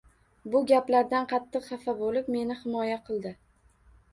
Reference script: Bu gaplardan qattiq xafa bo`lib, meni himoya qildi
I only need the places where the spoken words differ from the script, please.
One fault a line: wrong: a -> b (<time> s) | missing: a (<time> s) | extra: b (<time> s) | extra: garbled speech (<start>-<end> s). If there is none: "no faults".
no faults